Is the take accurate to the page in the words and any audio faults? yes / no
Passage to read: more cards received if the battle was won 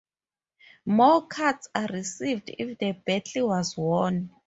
no